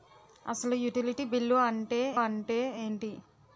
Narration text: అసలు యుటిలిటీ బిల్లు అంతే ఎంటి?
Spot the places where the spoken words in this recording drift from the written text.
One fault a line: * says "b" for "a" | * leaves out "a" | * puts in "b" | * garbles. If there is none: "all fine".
* puts in "అంతే"